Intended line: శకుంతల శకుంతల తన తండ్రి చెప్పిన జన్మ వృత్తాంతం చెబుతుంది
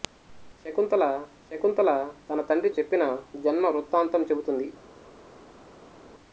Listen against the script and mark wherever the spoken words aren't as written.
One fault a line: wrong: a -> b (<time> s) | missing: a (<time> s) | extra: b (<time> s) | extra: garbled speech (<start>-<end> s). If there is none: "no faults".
no faults